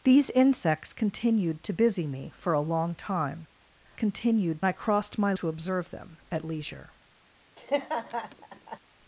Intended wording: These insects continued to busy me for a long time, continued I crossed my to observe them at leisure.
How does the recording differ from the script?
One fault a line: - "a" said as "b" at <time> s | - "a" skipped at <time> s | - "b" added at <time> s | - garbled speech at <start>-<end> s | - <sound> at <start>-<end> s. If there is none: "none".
- laugh at 7.6-8.8 s